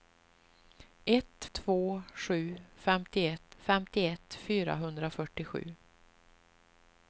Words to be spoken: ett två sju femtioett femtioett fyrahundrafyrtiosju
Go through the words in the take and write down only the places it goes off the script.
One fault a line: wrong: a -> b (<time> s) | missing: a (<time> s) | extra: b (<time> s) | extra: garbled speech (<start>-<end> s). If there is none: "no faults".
no faults